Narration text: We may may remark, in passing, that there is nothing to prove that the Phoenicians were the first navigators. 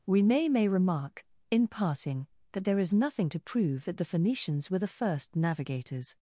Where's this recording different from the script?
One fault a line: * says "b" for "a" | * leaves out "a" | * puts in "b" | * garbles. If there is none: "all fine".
all fine